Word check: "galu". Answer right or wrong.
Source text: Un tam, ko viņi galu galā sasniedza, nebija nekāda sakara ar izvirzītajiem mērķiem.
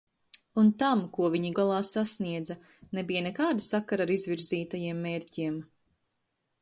wrong